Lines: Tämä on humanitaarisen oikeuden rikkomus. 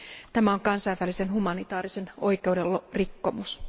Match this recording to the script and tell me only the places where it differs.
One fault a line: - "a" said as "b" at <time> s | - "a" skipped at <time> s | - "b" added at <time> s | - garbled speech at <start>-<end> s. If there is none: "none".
- "kansainvälisen" added at 0.6 s